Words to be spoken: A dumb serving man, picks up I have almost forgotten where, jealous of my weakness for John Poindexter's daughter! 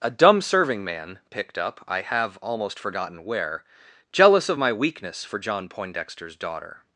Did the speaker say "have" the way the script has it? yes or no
yes